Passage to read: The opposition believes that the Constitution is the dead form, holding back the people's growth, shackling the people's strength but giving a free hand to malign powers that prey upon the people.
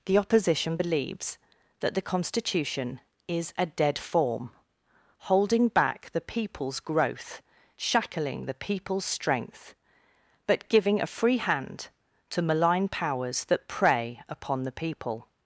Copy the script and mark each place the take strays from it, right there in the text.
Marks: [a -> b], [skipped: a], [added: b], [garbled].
The opposition believes that the Constitution is [the -> a] dead form, holding back the people's growth, shackling the people's strength but giving a free hand to malign powers that prey upon the people.